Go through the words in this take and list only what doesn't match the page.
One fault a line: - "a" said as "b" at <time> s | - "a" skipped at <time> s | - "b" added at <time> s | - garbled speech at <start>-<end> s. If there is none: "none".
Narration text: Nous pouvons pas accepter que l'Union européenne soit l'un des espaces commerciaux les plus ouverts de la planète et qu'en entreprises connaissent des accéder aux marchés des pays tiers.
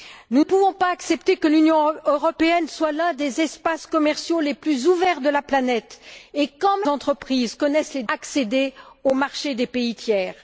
none